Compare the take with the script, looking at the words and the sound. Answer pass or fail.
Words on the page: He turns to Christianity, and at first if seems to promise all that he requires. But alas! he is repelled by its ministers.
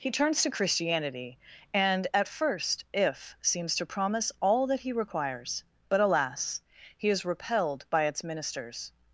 pass